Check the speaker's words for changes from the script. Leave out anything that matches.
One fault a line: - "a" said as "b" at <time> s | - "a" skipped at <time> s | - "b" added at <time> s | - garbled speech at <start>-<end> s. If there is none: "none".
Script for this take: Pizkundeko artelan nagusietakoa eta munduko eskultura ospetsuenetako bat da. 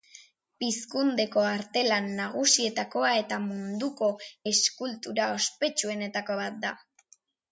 none